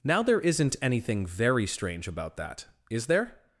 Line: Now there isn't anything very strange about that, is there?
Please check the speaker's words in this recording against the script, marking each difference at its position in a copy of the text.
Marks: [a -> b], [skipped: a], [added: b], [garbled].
Now there isn't anything very strange about that, is there?